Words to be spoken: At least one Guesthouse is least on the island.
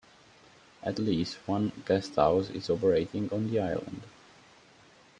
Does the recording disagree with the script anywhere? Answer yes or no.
yes